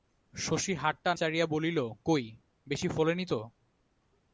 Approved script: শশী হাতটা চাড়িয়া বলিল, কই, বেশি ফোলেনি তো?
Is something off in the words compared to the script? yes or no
no